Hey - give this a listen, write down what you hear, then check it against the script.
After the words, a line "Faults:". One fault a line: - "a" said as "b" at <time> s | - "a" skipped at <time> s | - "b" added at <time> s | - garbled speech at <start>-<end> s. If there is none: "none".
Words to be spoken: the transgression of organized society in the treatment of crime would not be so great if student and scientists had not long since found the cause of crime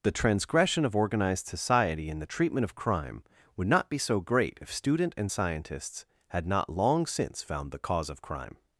the transgression of organized society in the treatment of crime would not be so great if student and scientists had not long since found the cause of crime
Faults:
none